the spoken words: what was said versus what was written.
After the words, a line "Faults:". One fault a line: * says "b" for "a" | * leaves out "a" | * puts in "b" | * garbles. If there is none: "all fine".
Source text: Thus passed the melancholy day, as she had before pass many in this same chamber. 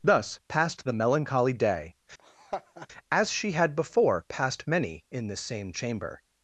Thus passed the melancholy day, as she had before passed many in this same chamber.
Faults:
* says "passed" for "pass"